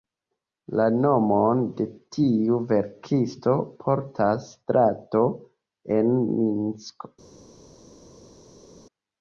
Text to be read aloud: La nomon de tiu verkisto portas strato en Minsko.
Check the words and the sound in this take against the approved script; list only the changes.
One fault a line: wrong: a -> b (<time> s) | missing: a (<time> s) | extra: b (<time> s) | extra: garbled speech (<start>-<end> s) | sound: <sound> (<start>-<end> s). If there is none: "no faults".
no faults